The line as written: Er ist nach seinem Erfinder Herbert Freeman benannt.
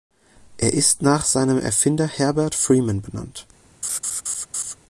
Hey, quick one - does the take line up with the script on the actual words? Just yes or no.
yes